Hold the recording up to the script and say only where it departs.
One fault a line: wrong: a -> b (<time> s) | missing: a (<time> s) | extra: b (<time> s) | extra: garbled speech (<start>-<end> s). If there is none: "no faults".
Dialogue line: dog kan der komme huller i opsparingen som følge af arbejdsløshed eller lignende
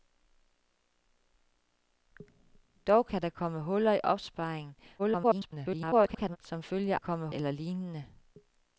extra: garbled speech (5.0-6.4 s)
wrong: arbejdsløshed -> komme (7.0 s)